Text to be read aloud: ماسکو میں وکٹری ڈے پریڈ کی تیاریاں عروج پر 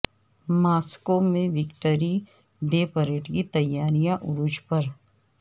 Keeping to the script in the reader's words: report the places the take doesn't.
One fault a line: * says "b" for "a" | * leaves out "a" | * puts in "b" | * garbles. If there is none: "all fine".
all fine